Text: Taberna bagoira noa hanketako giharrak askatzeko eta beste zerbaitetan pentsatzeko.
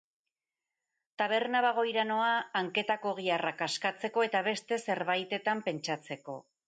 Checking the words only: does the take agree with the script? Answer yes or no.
yes